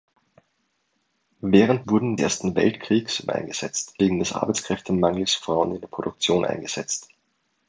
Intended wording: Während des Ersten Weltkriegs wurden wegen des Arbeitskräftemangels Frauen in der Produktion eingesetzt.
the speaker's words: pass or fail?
fail